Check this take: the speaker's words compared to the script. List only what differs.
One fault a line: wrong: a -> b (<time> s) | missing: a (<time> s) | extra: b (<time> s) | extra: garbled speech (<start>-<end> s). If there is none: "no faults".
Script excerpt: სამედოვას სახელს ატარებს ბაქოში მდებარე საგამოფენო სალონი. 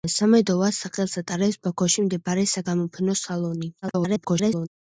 extra: garbled speech (3.8-4.7 s)